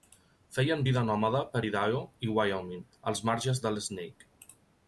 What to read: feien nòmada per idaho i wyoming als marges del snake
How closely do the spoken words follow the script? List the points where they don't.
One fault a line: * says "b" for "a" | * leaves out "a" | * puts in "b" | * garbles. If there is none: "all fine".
* puts in "vida"